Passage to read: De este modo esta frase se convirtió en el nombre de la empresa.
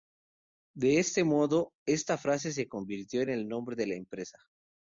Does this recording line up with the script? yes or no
yes